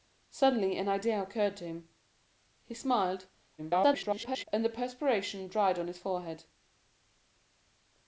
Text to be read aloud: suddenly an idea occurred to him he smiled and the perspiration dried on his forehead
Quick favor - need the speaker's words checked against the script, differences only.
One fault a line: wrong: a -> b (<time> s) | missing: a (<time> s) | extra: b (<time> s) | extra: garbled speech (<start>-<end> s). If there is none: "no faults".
extra: garbled speech (3.6-4.4 s)